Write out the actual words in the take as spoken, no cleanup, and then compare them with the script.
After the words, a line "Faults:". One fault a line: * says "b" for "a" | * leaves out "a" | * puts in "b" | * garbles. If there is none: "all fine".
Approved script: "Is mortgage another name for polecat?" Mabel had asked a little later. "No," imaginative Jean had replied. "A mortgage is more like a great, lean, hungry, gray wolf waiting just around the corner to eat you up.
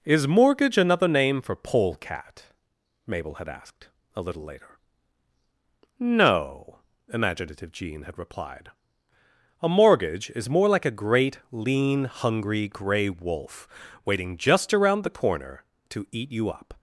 "Is mortgage another name for polecat?" Mabel had asked a little later. "No," imaginative Jean had replied. "A mortgage is more like a great, lean, hungry, gray wolf waiting just around the corner to eat you up.
Faults:
all fine